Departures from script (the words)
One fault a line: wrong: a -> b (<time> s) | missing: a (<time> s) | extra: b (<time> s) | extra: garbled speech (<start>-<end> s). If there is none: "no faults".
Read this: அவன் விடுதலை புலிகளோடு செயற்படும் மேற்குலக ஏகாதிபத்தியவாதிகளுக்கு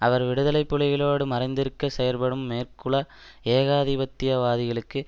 wrong: அவன் -> அவர் (0.0 s)
extra: மறைந்திருக்க (1.2 s)